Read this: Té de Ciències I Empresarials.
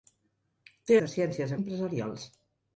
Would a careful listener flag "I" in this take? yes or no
no